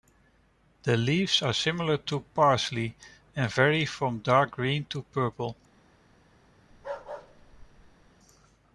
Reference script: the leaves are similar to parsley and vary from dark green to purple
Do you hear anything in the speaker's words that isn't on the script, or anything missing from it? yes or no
no